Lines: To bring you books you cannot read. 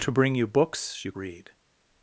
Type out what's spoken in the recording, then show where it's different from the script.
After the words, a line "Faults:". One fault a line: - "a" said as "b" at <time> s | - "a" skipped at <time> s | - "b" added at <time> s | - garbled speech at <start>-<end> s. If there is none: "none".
To bring you books you read.
Faults:
- "cannot" skipped at 1.1 s